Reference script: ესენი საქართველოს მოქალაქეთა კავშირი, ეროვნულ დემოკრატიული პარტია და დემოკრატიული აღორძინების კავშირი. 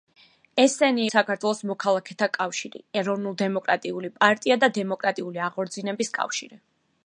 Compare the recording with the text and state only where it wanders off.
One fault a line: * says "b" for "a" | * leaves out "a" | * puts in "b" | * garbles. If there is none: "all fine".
all fine